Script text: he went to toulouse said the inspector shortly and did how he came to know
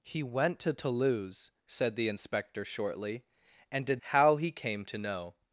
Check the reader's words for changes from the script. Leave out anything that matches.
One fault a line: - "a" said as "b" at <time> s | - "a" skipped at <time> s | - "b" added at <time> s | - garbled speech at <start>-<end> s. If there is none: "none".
none